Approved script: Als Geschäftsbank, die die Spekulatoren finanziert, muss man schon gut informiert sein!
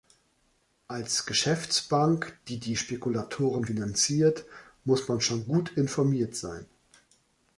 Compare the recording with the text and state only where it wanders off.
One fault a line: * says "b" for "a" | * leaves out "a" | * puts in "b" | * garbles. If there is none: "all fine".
all fine